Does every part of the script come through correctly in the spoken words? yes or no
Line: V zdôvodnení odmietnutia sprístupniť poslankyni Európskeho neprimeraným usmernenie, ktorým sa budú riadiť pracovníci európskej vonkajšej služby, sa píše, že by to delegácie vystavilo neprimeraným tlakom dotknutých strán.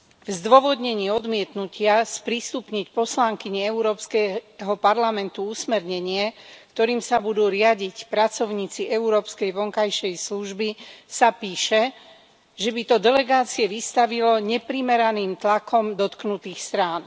no